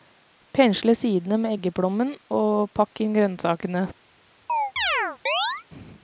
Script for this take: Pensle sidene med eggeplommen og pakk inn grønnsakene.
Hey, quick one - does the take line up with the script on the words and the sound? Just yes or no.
no